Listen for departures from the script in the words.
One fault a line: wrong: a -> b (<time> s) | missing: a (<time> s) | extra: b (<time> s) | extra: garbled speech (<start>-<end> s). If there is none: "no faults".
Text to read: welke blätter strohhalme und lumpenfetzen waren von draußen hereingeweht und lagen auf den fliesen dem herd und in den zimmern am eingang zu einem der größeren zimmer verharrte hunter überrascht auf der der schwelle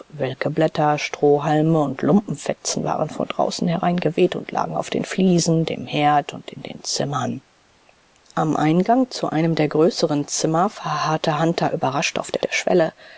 no faults